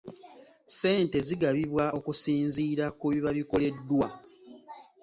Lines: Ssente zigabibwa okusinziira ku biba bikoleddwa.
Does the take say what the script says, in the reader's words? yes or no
yes